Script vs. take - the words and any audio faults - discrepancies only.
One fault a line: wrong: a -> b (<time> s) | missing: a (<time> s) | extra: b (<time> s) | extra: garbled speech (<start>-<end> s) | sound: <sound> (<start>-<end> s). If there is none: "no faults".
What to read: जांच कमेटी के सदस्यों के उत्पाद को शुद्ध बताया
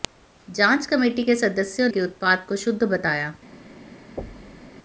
sound: thud (4.2-4.7 s)